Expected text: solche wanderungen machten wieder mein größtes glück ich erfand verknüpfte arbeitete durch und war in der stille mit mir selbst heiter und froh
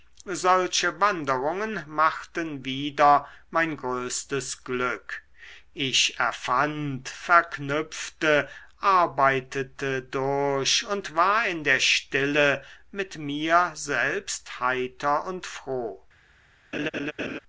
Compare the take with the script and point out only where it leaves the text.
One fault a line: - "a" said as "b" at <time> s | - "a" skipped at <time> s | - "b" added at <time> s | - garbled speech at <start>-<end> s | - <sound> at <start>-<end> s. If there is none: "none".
- laugh at 16.7-17.4 s